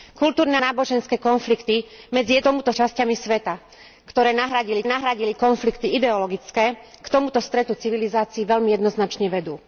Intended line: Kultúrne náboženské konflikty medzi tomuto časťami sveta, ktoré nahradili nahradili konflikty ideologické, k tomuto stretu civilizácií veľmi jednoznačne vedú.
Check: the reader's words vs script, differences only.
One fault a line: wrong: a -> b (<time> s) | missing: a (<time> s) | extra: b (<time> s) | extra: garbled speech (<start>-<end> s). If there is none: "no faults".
no faults